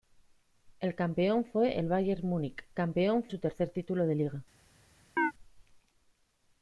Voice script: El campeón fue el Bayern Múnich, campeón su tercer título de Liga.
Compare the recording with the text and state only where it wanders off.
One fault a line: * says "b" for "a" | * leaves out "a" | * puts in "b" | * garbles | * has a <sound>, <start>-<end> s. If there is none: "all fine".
* has a chirp, 5.2-5.3 s